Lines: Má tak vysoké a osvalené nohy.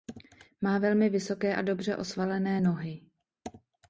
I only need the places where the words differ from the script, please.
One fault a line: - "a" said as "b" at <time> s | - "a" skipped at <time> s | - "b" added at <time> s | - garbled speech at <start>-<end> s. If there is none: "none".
- "tak" said as "velmi" at 0.8 s
- "dobře" added at 1.6 s